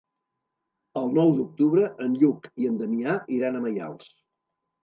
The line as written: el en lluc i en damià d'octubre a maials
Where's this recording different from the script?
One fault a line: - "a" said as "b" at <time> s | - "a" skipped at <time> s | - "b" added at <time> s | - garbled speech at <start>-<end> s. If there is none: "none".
- "nou d'octubre" added at 1.2 s
- "d'octubre" said as "iran" at 3.4 s